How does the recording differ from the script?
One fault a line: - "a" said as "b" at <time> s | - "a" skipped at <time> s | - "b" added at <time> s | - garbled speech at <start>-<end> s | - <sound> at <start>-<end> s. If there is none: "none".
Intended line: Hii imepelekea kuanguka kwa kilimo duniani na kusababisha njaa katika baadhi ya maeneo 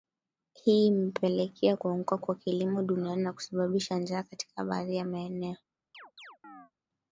- chirp at 5.9-6.7 s